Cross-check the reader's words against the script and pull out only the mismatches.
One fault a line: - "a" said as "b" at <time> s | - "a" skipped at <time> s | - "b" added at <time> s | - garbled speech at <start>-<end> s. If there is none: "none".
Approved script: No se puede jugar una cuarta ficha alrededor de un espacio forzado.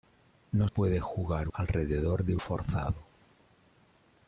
- "se" skipped at 0.7 s
- "una cuarta ficha" skipped at 1.5 s
- "un espacio" skipped at 2.4 s